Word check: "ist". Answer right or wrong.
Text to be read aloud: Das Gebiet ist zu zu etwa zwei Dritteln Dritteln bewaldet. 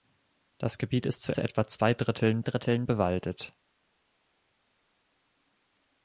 right